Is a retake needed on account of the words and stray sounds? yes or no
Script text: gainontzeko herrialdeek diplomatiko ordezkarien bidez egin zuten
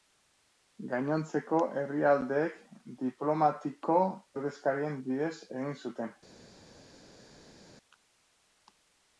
no